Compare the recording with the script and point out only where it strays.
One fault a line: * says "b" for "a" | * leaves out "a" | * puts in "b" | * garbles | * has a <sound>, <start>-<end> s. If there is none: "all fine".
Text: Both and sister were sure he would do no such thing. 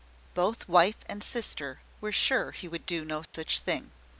* puts in "wife"
* has a dropout, 3.3-3.3 s